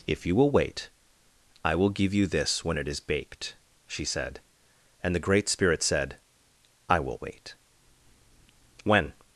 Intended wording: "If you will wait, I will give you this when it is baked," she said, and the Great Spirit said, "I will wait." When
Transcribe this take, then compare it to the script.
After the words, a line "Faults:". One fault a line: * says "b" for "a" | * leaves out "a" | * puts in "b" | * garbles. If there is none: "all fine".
"If you will wait, I will give you this when it is baked," she said, and the Great Spirit said, "I will wait." When
Faults:
all fine